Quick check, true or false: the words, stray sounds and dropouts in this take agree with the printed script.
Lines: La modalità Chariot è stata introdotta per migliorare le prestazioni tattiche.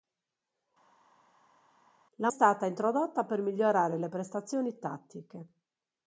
false